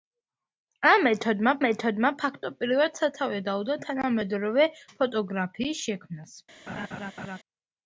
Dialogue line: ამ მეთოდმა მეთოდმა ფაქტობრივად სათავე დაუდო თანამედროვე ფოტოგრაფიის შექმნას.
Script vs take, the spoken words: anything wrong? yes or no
no